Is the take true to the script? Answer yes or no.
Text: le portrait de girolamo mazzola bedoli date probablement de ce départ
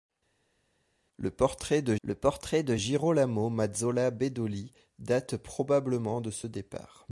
no